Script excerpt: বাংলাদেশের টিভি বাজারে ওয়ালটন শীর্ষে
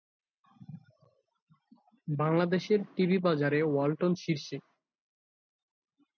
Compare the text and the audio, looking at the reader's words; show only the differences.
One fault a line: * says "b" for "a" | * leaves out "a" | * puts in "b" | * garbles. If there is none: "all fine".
all fine